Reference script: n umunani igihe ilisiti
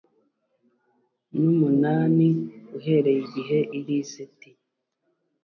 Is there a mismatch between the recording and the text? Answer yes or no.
yes